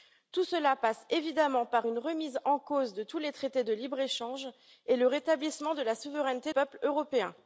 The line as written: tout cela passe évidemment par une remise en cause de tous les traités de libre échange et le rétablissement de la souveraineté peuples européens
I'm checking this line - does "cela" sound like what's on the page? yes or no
yes